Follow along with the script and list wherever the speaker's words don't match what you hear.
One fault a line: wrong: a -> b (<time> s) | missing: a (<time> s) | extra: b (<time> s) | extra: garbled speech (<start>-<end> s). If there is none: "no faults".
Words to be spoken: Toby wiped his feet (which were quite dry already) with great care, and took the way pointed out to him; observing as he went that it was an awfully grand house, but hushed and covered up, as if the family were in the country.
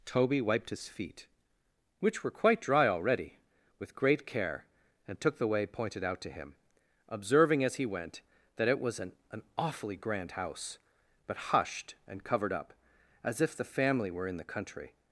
extra: an (9.3 s)